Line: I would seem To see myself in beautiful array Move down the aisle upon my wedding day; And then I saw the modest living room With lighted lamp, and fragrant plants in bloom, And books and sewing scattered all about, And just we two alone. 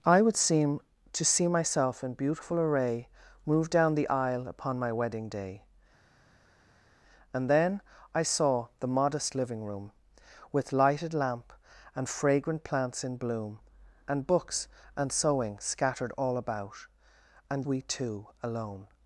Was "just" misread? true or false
true